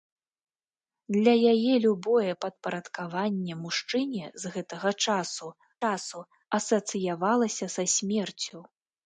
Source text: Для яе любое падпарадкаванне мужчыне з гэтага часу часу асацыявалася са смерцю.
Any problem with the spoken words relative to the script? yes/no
no